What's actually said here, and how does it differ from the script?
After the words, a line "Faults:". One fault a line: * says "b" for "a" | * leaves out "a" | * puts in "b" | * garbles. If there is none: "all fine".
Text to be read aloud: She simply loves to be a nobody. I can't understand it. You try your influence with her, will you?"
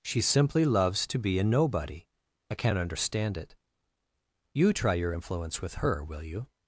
She simply loves to be a nobody. I can't understand it. You try your influence with her, will you?"
Faults:
all fine